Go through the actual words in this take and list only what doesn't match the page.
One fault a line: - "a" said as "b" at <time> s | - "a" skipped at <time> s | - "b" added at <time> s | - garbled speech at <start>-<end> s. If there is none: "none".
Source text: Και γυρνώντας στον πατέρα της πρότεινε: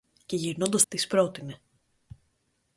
- "στον πατέρα" skipped at 0.8 s